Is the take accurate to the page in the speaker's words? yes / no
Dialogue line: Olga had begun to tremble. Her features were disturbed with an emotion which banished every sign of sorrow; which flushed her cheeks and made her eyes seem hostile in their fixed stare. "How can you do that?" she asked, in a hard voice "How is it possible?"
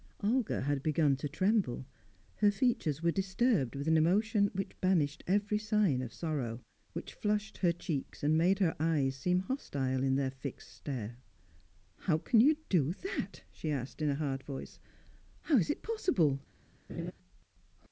yes